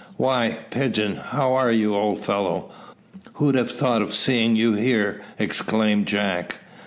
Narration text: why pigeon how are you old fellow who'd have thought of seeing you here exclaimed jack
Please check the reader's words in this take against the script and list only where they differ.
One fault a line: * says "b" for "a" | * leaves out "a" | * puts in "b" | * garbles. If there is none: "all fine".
all fine